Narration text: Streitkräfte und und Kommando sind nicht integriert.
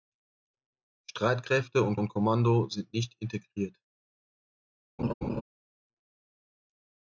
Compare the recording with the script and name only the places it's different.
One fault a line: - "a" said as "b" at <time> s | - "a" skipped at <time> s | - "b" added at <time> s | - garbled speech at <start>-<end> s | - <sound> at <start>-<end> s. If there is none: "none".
- laugh at 5.0-5.4 s